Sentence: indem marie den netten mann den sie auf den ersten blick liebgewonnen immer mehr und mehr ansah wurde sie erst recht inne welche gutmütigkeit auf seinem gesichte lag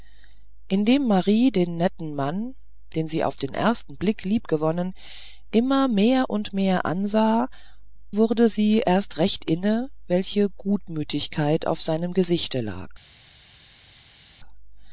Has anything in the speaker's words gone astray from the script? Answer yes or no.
no